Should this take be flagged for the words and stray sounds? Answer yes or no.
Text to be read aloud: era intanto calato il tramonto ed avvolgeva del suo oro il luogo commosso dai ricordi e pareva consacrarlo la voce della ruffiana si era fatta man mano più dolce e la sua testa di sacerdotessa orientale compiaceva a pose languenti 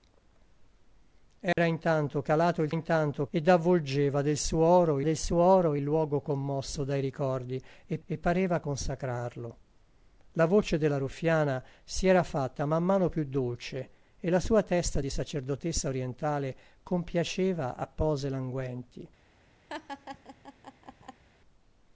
yes